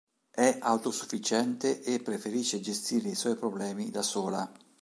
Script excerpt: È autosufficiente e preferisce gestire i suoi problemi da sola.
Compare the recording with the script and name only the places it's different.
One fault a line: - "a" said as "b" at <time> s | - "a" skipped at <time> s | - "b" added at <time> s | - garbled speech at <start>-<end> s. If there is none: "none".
none